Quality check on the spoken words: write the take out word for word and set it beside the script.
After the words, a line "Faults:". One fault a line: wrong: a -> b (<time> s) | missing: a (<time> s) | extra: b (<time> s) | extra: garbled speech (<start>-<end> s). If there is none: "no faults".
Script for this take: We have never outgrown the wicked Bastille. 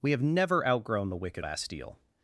We have never outgrown the wicked Bastille.
Faults:
no faults